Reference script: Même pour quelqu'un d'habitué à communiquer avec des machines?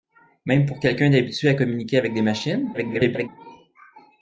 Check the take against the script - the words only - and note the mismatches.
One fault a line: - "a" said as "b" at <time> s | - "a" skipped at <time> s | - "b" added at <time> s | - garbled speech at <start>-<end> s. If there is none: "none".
- garbled speech at 2.7-3.3 s